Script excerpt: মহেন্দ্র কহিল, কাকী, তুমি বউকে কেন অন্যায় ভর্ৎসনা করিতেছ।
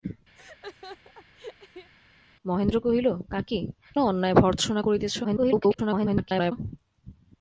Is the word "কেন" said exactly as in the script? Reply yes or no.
no